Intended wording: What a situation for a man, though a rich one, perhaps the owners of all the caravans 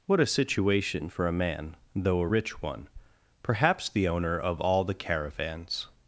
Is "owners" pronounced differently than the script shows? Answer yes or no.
yes